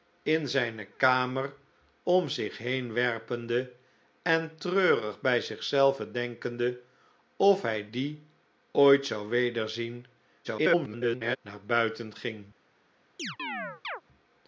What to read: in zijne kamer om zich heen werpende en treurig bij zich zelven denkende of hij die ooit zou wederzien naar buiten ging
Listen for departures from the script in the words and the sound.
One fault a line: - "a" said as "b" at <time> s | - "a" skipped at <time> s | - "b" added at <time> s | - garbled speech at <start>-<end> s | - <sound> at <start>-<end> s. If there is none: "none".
- garbled speech at 10.4-11.4 s
- chirp at 13.2-14.0 s